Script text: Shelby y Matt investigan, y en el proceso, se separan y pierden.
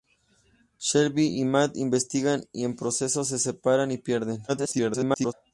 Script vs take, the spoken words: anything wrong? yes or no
yes